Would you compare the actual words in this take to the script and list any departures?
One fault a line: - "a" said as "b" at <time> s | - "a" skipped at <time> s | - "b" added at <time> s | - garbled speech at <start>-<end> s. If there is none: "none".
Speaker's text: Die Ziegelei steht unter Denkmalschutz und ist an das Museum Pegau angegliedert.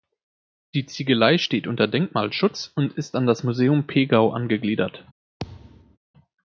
none